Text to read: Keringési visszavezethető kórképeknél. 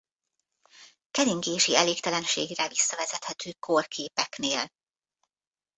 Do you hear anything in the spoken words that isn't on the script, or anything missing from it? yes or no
yes